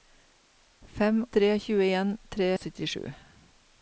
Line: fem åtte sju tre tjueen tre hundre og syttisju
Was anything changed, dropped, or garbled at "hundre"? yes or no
yes